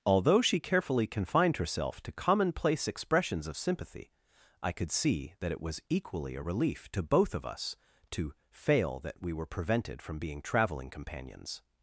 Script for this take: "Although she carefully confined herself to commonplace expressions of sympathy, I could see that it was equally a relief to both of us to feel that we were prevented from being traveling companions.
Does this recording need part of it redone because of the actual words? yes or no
yes